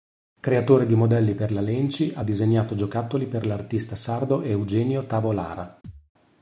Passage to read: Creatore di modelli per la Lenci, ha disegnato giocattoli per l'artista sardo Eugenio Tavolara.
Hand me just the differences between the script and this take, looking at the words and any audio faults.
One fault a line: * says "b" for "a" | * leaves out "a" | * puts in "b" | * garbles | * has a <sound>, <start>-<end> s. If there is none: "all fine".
* has a thud, 5.8-6.1 s